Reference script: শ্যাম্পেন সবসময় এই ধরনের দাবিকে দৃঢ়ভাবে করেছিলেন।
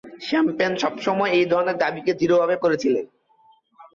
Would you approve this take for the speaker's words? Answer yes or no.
yes